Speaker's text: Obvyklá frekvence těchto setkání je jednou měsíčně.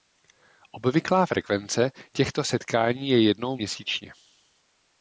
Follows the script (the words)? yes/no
yes